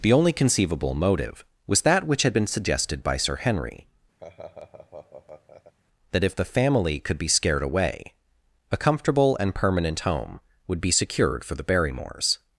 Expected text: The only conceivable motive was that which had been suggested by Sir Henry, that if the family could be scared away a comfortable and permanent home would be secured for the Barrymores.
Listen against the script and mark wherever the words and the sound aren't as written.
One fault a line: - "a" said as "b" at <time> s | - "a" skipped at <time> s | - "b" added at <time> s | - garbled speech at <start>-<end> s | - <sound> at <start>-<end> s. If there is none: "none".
- laugh at 4.2-5.7 s